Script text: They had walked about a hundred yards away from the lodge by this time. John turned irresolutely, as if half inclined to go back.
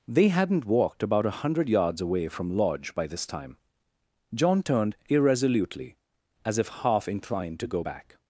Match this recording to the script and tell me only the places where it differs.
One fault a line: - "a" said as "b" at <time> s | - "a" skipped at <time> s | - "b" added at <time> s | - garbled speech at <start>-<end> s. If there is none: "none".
- "had" said as "hadn't" at 0.3 s
- "the" skipped at 2.6 s